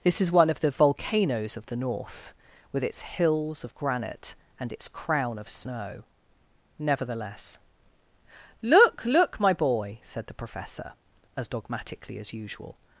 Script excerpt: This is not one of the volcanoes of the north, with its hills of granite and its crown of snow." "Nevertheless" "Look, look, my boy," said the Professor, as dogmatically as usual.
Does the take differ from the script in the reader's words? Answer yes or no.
yes